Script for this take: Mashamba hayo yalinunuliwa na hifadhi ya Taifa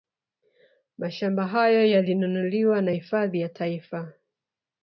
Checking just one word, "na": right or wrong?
right